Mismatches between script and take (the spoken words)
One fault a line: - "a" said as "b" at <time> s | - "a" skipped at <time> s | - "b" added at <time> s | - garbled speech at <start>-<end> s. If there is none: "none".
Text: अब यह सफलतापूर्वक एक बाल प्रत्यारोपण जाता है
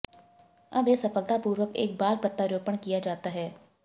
- "किया" added at 2.8 s